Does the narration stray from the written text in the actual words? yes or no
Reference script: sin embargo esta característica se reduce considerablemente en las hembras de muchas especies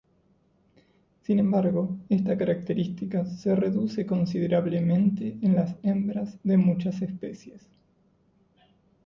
no